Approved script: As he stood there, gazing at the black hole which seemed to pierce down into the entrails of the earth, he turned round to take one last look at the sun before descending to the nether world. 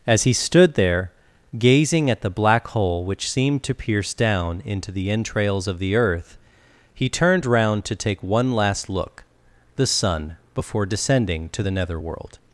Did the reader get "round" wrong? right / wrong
right